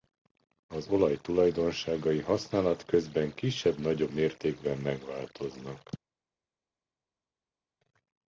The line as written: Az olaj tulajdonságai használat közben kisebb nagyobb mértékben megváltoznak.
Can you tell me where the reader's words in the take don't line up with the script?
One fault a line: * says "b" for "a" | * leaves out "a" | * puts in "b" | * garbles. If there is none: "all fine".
all fine